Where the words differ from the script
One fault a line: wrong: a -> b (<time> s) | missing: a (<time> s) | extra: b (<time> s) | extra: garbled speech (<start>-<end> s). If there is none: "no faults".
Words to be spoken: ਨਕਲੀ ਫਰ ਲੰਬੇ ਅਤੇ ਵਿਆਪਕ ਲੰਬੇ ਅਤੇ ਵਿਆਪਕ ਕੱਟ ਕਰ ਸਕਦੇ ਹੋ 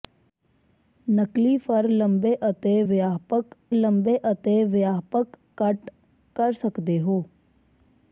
no faults